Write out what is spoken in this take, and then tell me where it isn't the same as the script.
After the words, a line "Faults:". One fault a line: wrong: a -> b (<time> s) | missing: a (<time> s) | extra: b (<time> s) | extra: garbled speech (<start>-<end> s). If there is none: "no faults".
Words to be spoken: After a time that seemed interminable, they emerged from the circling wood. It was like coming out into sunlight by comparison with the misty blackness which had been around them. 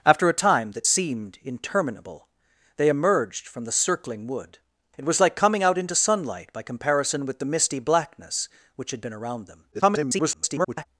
After a time that seemed interminable, they emerged from the circling wood. It was like coming out into sunlight by comparison with the misty blackness which had been around them. [garbled]
Faults:
extra: garbled speech (9.7-10.9 s)